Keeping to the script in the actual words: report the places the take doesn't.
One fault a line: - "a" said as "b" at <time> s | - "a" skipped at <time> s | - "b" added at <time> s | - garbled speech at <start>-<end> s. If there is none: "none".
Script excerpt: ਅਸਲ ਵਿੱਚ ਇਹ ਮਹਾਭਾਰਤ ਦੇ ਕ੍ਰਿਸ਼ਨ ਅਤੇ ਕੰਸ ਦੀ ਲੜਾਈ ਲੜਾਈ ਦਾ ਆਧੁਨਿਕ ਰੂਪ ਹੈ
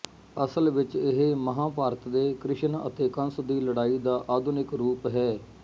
- "ਲੜਾਈ" skipped at 4.0 s